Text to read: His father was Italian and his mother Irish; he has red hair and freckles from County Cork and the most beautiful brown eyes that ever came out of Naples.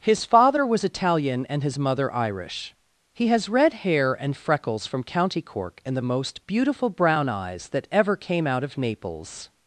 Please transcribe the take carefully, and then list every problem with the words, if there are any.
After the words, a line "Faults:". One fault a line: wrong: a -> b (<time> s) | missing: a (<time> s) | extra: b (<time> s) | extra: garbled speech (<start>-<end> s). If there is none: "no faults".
His father was Italian and his mother Irish; he has red hair and freckles from County Cork and the most beautiful brown eyes that ever came out of Naples.
Faults:
no faults